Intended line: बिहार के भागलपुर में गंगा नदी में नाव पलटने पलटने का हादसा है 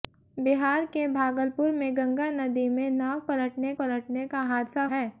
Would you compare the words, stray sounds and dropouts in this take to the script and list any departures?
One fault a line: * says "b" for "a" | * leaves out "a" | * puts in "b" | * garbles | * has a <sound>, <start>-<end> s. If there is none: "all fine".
all fine